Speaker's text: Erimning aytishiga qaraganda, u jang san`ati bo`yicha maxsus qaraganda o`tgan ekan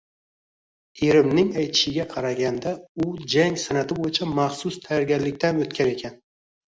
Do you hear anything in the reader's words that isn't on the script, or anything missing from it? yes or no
yes